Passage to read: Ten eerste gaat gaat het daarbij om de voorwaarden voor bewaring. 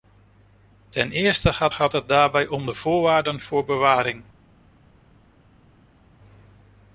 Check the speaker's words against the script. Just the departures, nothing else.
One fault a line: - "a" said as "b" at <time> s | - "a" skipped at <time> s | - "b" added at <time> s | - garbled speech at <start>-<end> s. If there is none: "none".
none